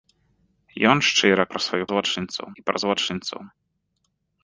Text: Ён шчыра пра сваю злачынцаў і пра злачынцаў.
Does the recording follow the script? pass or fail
pass